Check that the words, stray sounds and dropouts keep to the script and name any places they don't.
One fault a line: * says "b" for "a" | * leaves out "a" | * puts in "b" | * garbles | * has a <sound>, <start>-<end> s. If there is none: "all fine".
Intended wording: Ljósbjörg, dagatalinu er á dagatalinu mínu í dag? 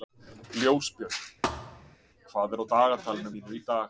* has a thud, 1.4-2.0 s
* says "hvað" for "dagatalinu"